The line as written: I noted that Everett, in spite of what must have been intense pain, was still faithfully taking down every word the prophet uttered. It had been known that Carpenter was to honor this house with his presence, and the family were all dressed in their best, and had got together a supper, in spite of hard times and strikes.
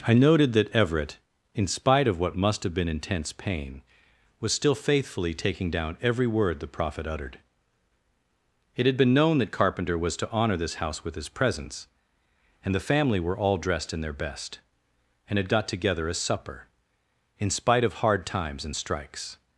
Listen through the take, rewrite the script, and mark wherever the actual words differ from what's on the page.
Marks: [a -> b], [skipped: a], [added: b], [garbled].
I noted that Everett, in spite of what must have been intense pain, was still faithfully taking down every word the prophet uttered. It had been known that Carpenter was to honor this house with his presence, and the family were all dressed in their best, and had got together a supper, in spite of hard times and strikes.